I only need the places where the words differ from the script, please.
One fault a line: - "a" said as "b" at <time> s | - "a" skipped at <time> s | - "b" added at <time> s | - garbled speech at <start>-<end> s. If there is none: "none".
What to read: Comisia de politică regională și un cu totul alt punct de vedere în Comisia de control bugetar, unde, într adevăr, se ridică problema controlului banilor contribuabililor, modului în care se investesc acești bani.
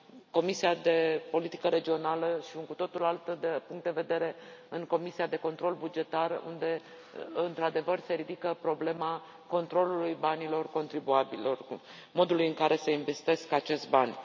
none